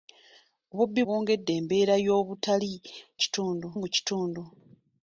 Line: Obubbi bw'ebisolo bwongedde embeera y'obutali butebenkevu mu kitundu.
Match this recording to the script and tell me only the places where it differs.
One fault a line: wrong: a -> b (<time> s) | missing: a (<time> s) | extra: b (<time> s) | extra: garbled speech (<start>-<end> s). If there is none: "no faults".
missing: bw'ebisolo (1.0 s)
wrong: butebenkevu -> kitundu (3.2 s)